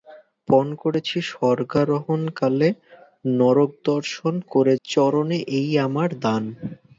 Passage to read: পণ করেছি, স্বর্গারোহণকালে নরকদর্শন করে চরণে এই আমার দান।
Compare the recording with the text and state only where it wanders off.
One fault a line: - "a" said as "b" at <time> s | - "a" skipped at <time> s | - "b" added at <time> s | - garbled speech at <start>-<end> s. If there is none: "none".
none